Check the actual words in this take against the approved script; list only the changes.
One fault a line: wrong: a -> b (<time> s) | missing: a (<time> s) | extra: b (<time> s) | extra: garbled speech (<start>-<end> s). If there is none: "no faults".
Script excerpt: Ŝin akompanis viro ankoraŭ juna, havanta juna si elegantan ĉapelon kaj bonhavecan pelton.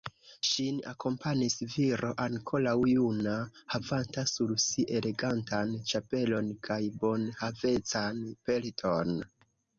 wrong: juna -> sur (4.3 s)